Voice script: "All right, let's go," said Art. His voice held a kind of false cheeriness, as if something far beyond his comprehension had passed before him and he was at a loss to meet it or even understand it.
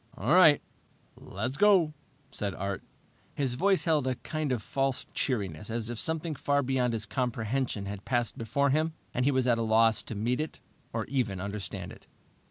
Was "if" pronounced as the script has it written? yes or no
yes